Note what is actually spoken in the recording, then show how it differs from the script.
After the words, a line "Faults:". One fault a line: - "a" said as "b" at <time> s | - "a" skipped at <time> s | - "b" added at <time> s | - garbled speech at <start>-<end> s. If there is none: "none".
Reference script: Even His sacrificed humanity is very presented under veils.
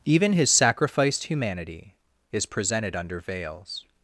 Even His sacrificed humanity is presented under veils.
Faults:
- "very" skipped at 2.5 s